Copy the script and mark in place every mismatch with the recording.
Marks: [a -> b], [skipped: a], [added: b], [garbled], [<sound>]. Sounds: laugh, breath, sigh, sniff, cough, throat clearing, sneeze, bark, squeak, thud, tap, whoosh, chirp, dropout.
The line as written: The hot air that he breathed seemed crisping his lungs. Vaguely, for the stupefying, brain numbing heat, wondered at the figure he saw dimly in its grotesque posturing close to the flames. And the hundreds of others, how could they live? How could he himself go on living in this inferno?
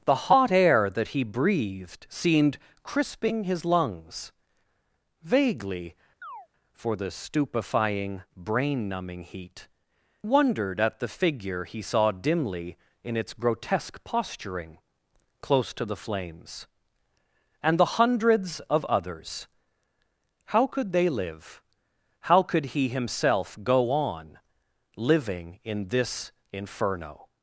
The hot air that he breathed seemed crisping his lungs. Vaguely, [chirp] for the stupefying, brain numbing heat, wondered at the figure he saw dimly in its grotesque posturing close to the flames. And the hundreds of others, how could they live? How could he himself go on living in this inferno?